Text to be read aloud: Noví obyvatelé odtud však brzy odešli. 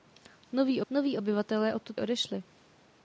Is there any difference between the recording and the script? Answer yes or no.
yes